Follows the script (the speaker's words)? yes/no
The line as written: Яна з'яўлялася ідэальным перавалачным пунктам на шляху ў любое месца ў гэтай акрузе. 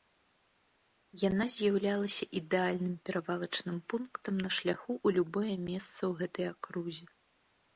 yes